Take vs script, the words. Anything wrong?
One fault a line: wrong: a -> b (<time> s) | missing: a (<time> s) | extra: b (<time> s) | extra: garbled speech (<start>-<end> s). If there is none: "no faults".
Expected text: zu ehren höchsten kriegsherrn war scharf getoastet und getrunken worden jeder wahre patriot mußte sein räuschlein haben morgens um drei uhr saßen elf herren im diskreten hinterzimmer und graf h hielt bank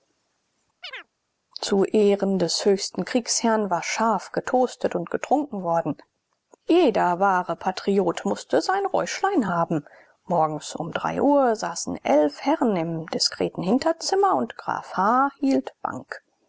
extra: des (2.4 s)